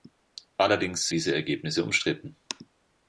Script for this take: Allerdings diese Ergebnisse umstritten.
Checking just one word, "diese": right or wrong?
right